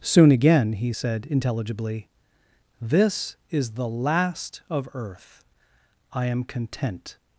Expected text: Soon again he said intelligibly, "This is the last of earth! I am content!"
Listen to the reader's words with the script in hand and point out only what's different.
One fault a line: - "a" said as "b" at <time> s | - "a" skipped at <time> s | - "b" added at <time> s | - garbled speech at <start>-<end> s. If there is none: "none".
none